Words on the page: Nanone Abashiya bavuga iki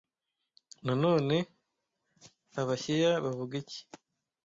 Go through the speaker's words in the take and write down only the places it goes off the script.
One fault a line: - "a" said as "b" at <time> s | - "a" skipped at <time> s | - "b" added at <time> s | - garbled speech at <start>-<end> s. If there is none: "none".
none